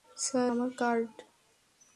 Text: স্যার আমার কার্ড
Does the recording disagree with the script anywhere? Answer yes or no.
no